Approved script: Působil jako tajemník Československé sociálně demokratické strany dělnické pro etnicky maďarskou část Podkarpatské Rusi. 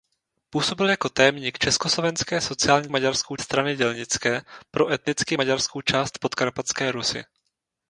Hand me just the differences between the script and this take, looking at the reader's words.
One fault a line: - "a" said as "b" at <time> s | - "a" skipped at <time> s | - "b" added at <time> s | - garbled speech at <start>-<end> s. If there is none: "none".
- "demokratické" said as "maďarskou" at 2.9 s